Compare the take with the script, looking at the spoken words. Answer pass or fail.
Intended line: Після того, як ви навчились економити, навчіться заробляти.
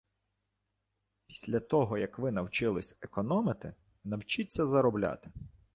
pass